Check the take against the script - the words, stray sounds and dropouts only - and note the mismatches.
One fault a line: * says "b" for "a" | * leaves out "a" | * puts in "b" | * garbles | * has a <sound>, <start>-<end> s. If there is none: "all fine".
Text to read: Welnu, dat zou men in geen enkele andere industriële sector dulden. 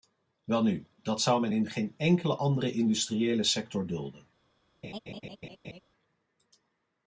* has a laugh, 4.8-5.8 s